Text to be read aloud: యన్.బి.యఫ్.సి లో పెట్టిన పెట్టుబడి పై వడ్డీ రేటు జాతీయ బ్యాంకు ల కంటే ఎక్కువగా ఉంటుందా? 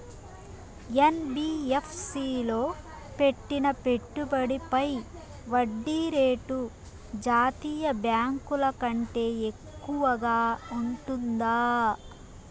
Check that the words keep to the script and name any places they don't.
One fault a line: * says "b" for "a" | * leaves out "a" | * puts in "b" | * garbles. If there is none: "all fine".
all fine